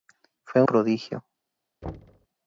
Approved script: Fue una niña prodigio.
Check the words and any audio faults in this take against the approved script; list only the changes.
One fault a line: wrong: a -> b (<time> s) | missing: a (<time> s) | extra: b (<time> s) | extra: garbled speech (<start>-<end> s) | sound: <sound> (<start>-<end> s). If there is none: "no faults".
missing: una niña (0.6 s)
sound: thud (1.8-2.3 s)